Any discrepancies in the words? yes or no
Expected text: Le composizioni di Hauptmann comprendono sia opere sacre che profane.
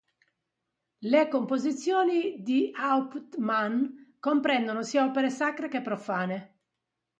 no